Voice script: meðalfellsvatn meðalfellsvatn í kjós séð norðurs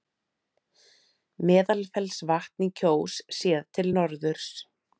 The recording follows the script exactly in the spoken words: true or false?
false